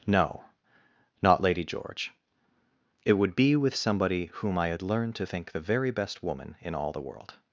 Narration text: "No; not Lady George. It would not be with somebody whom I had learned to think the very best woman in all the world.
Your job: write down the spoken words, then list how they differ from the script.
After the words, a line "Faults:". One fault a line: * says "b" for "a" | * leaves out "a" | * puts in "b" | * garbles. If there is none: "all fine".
"No; not Lady George. It would be with somebody whom I had learned to think the very best woman in all the world.
Faults:
* leaves out "not"